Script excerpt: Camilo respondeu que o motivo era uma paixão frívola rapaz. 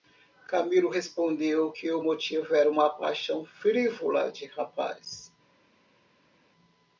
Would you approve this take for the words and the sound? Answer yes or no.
no